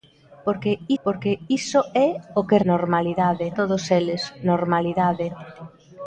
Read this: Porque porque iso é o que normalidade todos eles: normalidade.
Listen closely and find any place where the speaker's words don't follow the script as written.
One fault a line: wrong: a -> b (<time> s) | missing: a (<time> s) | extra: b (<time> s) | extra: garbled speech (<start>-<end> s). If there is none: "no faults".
no faults